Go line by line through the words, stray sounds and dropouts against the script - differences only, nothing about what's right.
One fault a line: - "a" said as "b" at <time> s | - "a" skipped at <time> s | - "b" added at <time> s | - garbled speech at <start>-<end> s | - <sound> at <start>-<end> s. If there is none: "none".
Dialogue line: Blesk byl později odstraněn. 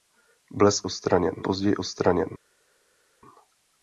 - "byl" said as "odstraněn" at 0.8 s